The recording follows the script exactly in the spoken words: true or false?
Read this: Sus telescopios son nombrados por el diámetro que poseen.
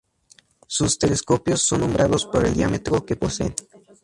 true